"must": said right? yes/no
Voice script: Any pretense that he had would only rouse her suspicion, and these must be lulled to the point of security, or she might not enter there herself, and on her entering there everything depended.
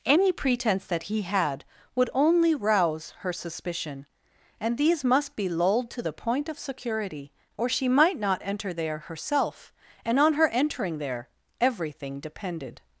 yes